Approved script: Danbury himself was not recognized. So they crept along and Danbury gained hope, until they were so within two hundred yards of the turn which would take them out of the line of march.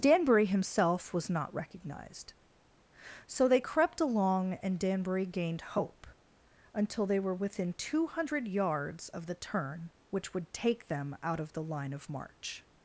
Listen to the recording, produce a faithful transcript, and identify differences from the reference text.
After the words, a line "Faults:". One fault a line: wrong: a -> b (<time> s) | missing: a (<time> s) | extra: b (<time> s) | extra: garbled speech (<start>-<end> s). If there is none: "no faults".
Danbury himself was not recognized. So they crept along and Danbury gained hope, until they were within two hundred yards of the turn which would take them out of the line of march.
Faults:
missing: so (7.3 s)